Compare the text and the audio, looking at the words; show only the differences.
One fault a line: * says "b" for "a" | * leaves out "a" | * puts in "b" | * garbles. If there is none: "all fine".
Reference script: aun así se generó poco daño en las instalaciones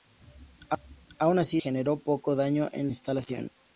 * leaves out "se"
* leaves out "las"